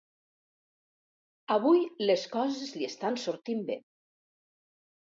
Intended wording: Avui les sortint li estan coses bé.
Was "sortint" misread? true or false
true